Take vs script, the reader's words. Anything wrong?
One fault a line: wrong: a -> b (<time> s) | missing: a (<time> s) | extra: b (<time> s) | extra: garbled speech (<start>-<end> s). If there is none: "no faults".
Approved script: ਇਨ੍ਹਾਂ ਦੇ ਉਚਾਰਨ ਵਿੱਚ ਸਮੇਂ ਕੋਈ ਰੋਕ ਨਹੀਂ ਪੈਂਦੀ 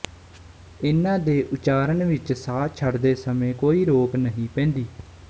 extra: ਸਾਹ ਛੱਡਦੇ (2.3 s)